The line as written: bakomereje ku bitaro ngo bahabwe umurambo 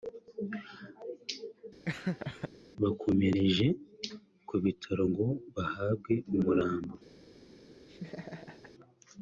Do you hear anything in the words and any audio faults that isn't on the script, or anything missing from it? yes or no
yes